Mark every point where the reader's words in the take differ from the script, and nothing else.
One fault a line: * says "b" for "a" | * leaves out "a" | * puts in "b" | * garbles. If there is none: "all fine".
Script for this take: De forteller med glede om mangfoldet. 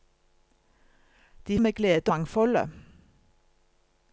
* leaves out "forteller"
* leaves out "om"